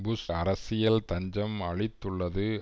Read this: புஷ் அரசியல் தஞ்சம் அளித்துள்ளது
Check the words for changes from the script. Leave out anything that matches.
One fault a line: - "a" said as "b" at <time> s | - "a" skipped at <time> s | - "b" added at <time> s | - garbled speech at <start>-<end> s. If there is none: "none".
none